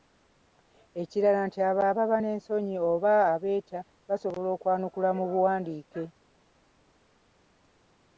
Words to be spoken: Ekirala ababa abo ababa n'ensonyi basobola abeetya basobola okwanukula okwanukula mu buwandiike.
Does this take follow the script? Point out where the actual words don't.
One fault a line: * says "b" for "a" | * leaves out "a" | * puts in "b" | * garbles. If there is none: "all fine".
* says "nti" for "ababa"
* says "oba" for "basobola"
* leaves out "okwanukula"